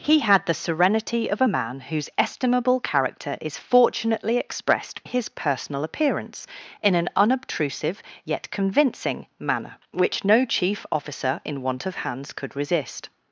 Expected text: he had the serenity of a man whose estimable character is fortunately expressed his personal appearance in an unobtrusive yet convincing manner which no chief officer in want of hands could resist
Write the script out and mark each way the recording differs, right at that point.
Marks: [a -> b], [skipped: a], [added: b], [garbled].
he had the serenity of a man whose estimable character is fortunately expressed his personal appearance in an unobtrusive yet convincing manner which no chief officer in want of hands could resist